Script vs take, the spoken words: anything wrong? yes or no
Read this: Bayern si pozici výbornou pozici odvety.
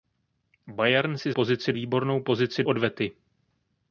no